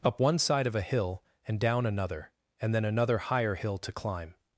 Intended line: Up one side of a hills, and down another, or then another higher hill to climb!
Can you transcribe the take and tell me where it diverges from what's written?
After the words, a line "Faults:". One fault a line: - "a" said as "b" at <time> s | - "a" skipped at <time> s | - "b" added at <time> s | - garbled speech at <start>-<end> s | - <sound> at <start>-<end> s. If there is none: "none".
Up one side of a hill, and down another, and then another higher hill to climb!
Faults:
- "hills" said as "hill" at 0.8 s
- "or" said as "and" at 2.6 s